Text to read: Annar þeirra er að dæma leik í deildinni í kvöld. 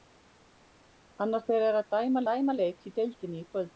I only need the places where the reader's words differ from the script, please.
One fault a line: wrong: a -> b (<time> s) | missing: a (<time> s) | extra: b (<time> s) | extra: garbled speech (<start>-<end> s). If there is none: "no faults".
extra: dæma (2.3 s)